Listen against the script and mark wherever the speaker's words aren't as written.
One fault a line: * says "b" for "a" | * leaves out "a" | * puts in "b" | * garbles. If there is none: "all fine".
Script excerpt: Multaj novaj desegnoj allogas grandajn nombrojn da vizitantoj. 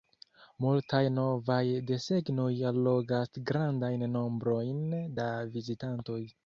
all fine